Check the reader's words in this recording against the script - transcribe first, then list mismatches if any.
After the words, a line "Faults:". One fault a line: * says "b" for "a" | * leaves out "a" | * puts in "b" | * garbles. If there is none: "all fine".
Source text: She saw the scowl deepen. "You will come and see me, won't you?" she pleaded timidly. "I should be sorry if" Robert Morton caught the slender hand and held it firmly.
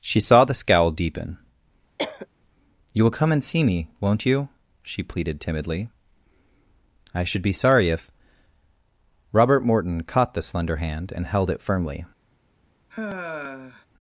She saw the scowl deepen. "You will come and see me, won't you?" she pleaded timidly. "I should be sorry if" Robert Morton caught the slender hand and held it firmly.
Faults:
all fine